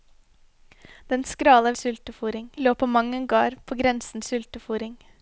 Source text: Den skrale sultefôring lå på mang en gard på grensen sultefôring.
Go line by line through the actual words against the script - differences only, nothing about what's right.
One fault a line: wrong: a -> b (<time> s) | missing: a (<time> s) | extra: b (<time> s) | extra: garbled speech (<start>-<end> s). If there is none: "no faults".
no faults